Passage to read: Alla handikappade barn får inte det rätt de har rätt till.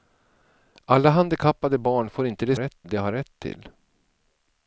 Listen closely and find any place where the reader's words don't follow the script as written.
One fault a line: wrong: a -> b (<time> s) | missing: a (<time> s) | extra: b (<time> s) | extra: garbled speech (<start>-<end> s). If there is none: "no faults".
no faults